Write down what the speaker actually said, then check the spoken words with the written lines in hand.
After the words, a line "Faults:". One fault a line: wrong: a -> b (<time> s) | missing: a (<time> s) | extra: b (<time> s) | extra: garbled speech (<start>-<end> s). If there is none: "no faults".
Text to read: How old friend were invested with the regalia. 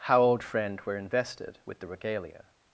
How old friend were invested with the regalia.
Faults:
no faults